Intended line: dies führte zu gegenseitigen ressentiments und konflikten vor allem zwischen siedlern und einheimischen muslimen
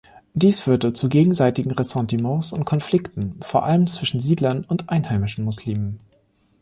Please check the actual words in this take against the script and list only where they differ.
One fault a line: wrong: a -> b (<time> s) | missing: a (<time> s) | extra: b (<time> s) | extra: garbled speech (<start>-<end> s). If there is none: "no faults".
no faults